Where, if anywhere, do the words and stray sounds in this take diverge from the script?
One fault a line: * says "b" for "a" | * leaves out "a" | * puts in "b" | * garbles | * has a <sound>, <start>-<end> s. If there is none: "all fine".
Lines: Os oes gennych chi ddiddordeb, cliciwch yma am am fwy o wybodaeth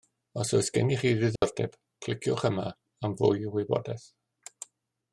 * has a dropout, 1.4-1.4 s
* leaves out "am"